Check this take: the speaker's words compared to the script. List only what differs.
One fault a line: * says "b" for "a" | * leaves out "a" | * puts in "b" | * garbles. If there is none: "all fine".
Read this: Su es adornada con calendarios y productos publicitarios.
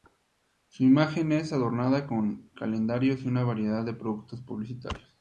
* puts in "imagen"
* puts in "una variedad de"